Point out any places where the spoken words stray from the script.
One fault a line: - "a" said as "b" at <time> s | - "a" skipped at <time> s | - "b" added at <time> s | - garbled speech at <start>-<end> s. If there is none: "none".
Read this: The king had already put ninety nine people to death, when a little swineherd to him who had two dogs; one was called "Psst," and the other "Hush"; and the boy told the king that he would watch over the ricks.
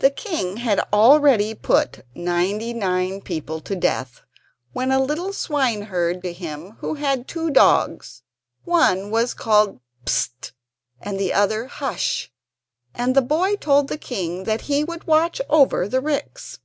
none